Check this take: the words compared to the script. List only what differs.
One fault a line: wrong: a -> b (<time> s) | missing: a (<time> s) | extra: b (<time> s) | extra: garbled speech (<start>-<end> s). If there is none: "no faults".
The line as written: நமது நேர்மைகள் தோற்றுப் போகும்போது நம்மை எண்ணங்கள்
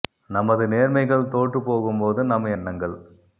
no faults